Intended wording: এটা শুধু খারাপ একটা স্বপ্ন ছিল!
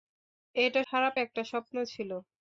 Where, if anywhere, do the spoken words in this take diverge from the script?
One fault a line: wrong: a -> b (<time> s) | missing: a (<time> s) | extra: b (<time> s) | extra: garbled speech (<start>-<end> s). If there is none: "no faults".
missing: শুধু (0.8 s)